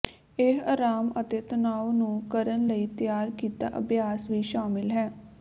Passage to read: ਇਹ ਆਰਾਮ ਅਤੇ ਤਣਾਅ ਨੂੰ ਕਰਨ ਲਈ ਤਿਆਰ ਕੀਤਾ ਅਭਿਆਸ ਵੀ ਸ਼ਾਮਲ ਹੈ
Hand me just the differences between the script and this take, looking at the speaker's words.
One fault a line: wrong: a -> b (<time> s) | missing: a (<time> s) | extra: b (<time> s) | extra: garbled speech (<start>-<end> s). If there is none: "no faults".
no faults